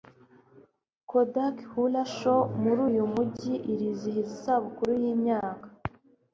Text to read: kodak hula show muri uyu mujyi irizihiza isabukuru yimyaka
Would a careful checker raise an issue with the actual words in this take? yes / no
no